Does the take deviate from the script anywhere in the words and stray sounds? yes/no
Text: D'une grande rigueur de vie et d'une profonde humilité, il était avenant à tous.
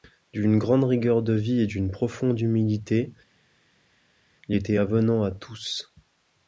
no